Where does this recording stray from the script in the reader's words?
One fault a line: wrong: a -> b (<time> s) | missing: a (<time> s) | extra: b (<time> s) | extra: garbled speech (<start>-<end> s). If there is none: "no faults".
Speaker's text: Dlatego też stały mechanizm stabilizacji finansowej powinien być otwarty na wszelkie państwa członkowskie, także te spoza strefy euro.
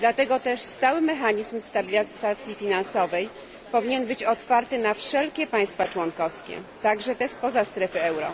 no faults